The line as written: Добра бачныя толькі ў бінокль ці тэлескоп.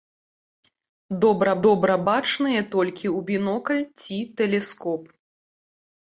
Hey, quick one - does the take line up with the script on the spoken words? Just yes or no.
no